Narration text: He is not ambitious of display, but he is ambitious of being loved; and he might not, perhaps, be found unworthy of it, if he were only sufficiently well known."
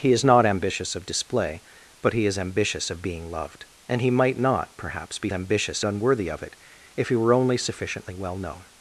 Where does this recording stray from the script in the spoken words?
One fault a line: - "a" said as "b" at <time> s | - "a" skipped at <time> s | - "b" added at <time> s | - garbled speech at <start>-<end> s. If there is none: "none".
- "found" said as "ambitious" at 5.3 s